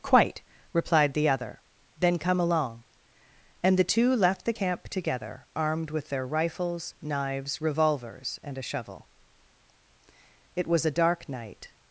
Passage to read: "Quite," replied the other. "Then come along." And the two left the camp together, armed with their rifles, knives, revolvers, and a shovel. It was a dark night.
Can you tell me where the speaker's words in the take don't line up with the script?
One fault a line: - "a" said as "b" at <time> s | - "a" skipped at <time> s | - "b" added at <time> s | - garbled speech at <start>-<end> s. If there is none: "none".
none